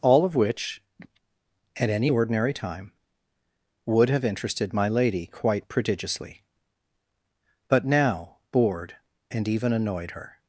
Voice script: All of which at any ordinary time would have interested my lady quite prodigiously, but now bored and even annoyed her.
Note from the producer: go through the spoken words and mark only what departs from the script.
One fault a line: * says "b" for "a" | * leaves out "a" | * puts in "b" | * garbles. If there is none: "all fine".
all fine